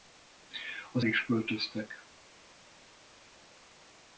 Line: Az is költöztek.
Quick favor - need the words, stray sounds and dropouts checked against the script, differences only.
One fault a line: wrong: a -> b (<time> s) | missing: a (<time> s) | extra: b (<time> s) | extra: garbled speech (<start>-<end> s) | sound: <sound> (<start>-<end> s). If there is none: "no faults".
no faults